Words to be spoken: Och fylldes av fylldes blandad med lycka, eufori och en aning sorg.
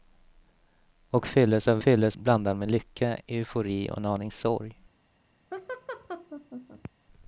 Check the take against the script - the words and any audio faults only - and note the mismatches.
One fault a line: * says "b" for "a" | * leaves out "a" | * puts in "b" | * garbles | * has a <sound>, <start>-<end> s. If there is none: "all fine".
* has a laugh, 5.5-6.9 s